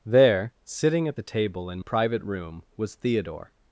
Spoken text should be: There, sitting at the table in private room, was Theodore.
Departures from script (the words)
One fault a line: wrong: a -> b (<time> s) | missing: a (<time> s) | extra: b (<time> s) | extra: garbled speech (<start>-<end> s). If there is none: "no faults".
no faults